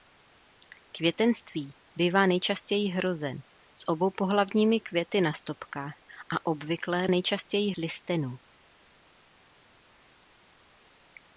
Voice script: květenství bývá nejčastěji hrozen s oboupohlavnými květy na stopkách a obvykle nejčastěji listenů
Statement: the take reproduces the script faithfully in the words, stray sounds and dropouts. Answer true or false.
true